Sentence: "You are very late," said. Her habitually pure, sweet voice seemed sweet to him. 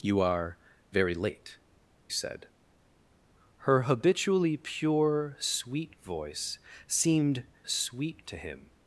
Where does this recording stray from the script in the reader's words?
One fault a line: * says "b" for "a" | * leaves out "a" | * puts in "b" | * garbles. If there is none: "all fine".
all fine